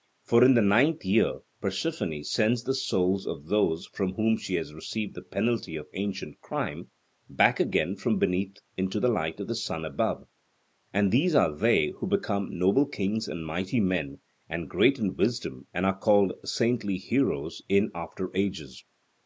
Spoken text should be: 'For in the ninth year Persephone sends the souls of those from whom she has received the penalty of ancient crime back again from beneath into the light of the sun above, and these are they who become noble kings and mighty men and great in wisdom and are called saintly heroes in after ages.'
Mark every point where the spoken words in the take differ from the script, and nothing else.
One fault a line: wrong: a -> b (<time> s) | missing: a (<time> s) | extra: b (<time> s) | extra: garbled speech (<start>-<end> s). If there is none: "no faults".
no faults